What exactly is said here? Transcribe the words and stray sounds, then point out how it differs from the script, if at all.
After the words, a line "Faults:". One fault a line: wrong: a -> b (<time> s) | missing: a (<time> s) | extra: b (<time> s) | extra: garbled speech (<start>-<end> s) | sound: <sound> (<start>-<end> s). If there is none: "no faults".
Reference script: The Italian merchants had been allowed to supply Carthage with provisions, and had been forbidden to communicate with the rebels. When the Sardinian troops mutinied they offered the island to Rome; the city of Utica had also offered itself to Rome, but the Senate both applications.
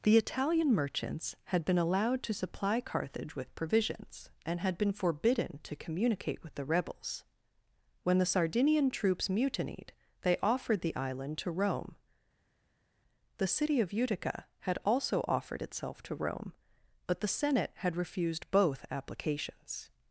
The Italian merchants had been allowed to supply Carthage with provisions, and had been forbidden to communicate with the rebels. When the Sardinian troops mutinied they offered the island to Rome; the city of Utica had also offered itself to Rome, but the Senate had refused both applications.
Faults:
extra: had refused (17.7 s)